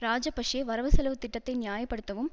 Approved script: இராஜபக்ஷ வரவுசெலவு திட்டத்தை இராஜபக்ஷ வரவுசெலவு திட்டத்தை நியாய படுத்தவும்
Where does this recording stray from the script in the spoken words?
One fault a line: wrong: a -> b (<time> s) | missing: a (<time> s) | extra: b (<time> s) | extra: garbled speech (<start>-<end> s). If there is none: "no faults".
missing: இராஜபக்ஷ வரவுசெலவு திட்டத்தை (1.5 s)